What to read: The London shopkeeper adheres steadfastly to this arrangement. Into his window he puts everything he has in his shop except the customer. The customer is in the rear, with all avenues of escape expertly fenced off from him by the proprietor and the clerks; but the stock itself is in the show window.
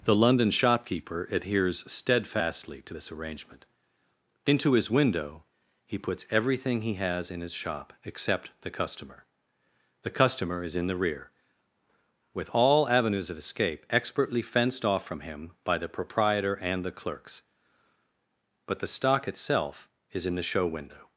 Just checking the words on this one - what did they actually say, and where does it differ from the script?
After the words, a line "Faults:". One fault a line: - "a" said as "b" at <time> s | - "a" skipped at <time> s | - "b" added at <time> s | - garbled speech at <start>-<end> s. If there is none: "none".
The London shopkeeper adheres steadfastly to this arrangement. Into his window he puts everything he has in his shop except the customer. The customer is in the rear, with all avenues of escape expertly fenced off from him by the proprietor and the clerks; but the stock itself is in the show window.
Faults:
none